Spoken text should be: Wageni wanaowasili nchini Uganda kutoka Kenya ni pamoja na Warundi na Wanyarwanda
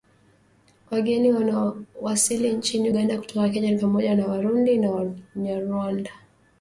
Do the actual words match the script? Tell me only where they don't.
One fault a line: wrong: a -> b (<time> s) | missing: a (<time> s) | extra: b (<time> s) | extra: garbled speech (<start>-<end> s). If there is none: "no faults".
no faults